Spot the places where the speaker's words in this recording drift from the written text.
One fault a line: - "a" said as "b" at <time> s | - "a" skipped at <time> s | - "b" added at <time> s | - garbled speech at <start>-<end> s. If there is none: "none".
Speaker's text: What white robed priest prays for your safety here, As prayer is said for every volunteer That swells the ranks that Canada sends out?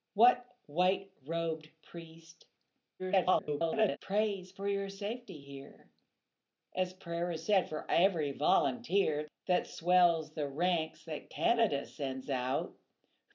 - garbled speech at 3.0-4.0 s